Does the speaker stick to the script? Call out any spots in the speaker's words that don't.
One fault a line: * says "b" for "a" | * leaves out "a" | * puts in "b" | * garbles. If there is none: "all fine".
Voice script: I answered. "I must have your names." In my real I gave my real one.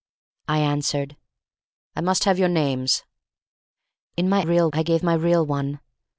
all fine